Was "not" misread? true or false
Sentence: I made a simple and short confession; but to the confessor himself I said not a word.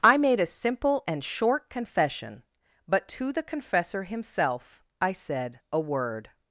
true